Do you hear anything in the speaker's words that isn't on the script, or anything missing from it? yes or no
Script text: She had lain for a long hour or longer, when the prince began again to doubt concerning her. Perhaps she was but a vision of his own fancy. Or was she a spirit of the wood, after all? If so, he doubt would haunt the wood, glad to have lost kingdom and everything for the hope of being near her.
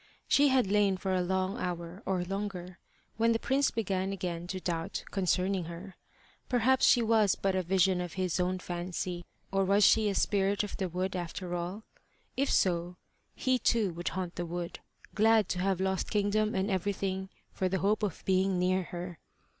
yes